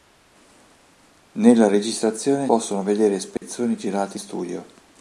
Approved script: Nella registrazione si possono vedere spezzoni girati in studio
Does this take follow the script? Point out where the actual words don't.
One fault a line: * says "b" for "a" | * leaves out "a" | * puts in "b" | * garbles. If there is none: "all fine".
* leaves out "si"
* leaves out "in"